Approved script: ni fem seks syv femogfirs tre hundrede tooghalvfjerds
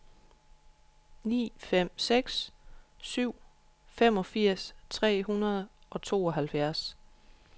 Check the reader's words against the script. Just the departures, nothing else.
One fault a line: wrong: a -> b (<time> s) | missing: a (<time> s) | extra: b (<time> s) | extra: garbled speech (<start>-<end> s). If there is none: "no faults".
extra: og (5.9 s)